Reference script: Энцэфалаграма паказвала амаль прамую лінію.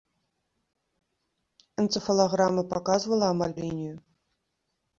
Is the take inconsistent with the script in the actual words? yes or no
yes